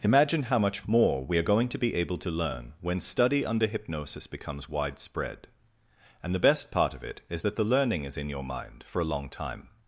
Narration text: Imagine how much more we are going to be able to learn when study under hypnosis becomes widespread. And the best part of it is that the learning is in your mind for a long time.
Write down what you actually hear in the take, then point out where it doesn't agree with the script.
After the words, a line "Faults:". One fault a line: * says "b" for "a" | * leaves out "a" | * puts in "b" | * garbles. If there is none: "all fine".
Imagine how much more we are going to be able to learn when study under hypnosis becomes widespread. And the best part of it is that the learning is in your mind for a long time.
Faults:
all fine